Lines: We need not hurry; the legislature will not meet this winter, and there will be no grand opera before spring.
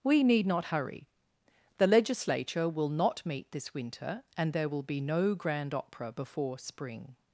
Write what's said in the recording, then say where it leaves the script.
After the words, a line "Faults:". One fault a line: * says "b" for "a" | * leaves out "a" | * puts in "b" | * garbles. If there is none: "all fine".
We need not hurry; the legislature will not meet this winter, and there will be no grand opera before spring.
Faults:
all fine